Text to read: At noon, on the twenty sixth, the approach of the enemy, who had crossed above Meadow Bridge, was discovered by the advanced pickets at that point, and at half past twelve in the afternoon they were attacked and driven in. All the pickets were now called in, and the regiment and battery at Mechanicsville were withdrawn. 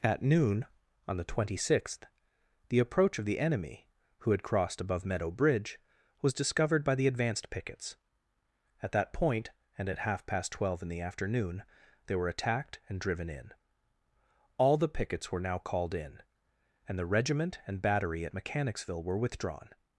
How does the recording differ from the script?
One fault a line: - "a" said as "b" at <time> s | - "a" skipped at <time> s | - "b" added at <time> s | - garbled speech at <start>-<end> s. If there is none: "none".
none